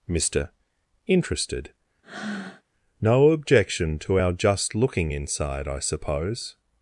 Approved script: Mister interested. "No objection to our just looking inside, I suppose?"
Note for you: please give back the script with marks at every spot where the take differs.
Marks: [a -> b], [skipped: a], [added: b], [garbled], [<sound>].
Mister interested. [breath] "No objection to our just looking inside, I suppose?"